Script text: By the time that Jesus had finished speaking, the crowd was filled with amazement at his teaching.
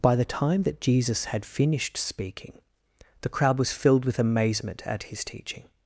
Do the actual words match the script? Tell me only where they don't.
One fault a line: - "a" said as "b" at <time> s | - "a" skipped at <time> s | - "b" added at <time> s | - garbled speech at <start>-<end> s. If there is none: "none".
none